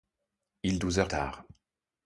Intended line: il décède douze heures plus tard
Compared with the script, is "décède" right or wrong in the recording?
wrong